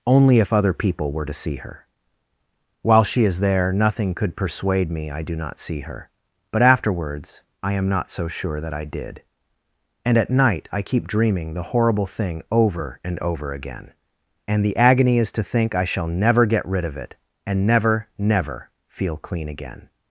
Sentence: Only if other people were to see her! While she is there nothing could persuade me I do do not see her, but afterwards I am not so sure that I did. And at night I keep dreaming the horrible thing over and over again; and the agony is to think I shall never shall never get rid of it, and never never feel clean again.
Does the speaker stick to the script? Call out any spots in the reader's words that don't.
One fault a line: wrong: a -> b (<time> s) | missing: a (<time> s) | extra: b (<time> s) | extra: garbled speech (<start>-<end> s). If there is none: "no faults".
missing: do (5.3 s)
missing: shall never (16.5 s)